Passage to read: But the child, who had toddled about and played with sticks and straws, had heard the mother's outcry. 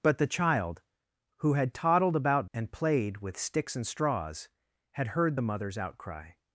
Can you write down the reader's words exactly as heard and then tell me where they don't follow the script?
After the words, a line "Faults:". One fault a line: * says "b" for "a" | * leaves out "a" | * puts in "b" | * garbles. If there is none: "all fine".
But the child, who had toddled about and played with sticks and straws, had heard the mother's outcry.
Faults:
all fine